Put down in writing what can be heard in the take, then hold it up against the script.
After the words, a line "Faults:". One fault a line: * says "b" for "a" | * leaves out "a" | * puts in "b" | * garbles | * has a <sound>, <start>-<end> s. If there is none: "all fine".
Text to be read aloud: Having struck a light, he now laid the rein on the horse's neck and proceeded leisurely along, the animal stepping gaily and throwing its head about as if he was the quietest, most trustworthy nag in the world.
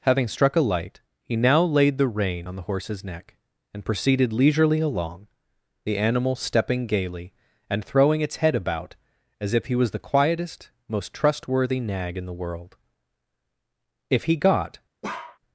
Having struck a light, he now laid the rein on the horse's neck and proceeded leisurely along, the animal stepping gaily and throwing its head about as if he was the quietest, most trustworthy nag in the world. If he got
Faults:
* puts in "If he got"
* has a bark, 15.0-15.4 s